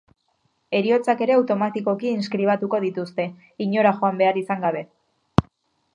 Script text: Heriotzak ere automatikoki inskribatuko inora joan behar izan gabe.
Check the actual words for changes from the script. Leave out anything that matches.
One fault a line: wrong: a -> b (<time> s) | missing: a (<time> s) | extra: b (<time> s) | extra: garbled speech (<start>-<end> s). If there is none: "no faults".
extra: dituzte (2.9 s)